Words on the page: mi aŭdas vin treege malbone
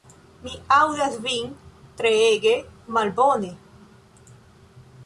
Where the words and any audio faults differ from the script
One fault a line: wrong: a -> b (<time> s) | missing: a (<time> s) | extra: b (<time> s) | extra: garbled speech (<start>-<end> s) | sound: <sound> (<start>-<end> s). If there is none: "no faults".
no faults